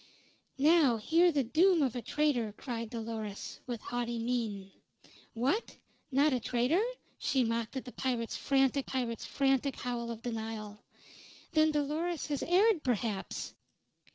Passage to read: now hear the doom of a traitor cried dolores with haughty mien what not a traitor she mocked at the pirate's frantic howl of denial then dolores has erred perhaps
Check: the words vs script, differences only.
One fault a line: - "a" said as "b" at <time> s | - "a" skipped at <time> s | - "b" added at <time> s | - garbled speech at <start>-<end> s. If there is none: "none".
- "pirate's frantic" added at 8.8 s